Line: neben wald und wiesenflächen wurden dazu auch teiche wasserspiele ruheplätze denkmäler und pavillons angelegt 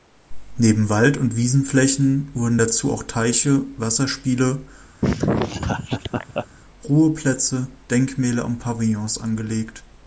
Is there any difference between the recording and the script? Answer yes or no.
no